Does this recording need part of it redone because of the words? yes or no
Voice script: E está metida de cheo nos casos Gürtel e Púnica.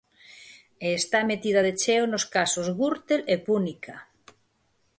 no